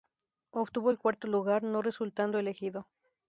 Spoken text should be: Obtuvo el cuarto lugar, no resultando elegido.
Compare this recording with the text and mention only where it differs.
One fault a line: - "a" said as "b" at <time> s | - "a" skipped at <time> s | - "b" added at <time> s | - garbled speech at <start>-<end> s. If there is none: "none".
none